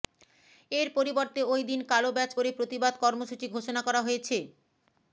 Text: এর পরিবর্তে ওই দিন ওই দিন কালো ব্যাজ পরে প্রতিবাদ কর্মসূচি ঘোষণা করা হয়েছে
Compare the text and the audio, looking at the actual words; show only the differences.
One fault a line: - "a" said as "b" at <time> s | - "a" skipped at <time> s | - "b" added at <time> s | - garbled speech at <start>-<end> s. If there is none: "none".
- "ওই দিন" skipped at 1.8 s